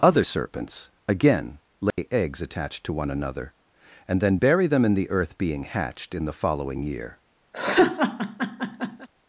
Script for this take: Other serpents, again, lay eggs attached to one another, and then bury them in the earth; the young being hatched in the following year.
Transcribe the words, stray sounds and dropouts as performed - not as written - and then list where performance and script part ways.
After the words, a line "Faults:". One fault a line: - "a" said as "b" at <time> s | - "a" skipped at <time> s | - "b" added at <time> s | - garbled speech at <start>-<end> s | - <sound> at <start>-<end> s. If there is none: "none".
Other serpents, again, lay eggs attached to one another, and then bury them in the earth; being hatched in the following year.
Faults:
- dropout at 1.9-2.0 s
- "the young" skipped at 5.4 s
- laugh at 7.5-9.1 s